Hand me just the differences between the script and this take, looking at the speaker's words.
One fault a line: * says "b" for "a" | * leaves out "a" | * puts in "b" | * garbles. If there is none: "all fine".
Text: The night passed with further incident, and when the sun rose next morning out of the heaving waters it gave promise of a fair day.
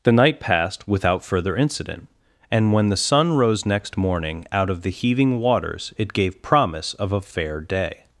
* says "without" for "with"